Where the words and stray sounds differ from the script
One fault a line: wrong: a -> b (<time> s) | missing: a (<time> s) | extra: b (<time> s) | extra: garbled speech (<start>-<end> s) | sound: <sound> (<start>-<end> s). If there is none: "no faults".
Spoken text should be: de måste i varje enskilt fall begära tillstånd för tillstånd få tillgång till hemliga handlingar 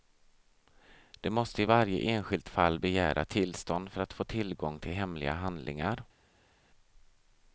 wrong: tillstånd -> att (4.0 s)